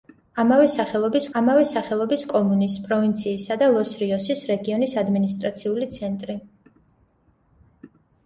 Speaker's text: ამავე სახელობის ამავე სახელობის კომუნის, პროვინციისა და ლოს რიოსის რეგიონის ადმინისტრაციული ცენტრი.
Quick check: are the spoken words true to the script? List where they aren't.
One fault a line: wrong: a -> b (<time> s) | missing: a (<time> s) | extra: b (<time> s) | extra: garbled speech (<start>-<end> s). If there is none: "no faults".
no faults